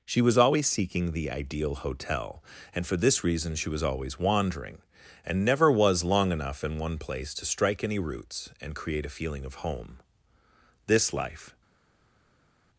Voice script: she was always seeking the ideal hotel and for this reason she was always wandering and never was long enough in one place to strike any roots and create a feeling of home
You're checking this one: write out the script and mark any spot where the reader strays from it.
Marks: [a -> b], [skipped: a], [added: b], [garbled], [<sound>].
she was always seeking the ideal hotel and for this reason she was always wandering and never was long enough in one place to strike any roots and create a feeling of home [added: this life]